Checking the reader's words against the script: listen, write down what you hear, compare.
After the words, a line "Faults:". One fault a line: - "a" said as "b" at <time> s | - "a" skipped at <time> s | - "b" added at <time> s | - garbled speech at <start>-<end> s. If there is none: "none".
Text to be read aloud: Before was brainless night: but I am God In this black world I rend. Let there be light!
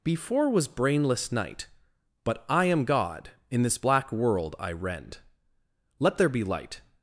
Before was brainless night: but I am God In this black world I rend. Let there be light!
Faults:
none